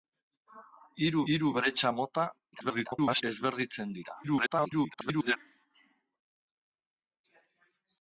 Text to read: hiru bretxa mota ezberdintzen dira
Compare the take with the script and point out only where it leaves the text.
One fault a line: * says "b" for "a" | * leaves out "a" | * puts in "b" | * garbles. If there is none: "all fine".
* puts in "hiru"
* garbles
* garbles